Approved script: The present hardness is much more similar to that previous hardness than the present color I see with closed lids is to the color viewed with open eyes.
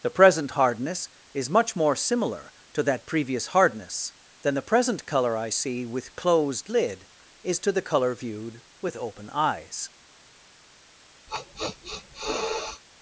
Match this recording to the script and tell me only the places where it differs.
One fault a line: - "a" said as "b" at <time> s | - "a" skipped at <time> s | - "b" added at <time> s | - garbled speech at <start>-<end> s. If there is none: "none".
- "lids" said as "lid" at 6.7 s